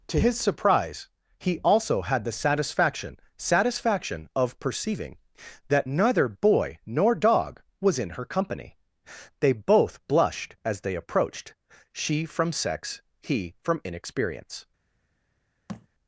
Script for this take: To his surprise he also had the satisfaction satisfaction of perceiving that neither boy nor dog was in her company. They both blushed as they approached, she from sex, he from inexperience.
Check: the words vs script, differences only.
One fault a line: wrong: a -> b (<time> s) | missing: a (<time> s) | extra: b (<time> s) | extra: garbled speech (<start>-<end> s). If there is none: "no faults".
no faults